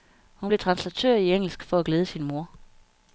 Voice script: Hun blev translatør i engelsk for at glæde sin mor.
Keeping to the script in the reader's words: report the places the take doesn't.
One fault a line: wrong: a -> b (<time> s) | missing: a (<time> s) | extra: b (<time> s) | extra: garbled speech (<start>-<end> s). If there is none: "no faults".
no faults